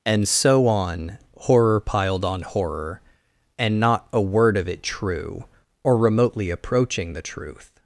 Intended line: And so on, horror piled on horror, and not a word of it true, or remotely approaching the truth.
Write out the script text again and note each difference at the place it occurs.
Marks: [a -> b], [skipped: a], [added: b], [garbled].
And so on, horror piled on horror, and not a word of it true, or remotely approaching the truth.